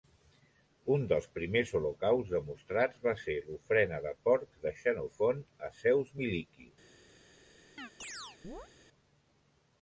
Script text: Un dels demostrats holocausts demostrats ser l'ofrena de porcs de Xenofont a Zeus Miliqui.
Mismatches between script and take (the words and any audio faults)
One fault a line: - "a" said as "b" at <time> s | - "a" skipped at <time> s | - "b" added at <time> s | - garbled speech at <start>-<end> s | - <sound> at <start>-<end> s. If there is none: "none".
- "demostrats" said as "primers" at 1.3 s
- "va" added at 3.0 s
- chirp at 7.8-8.7 s